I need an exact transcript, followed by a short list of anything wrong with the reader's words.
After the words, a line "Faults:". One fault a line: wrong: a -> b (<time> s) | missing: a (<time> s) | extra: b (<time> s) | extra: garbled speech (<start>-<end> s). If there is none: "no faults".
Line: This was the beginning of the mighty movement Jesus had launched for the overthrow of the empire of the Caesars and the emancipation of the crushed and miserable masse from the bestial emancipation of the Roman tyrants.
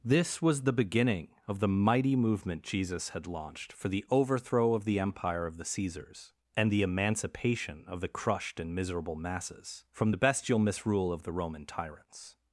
This was the beginning of the mighty movement Jesus had launched for the overthrow of the empire of the Caesars and the emancipation of the crushed and miserable masses from the bestial misrule of the Roman tyrants.
Faults:
wrong: masse -> masses (9.2 s)
wrong: emancipation -> misrule (10.6 s)